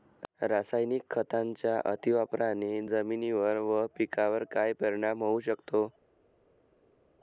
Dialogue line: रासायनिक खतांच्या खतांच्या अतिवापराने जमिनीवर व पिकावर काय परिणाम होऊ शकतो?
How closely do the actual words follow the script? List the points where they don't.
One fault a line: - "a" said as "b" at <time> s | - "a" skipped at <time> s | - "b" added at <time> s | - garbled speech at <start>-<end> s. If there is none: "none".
- "खतांच्या" skipped at 1.8 s